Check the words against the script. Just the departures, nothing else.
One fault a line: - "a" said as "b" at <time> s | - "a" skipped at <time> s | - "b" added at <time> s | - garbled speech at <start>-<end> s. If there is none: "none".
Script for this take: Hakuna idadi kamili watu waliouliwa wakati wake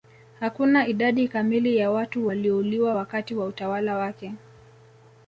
- "ya" added at 1.8 s
- "wa utawala" added at 3.3 s